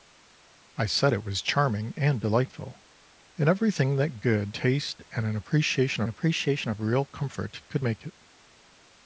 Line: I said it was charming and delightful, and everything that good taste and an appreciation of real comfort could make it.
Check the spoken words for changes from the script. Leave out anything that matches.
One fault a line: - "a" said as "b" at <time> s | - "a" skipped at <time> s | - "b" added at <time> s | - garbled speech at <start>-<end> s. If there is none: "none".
- "appreciation" added at 6.1 s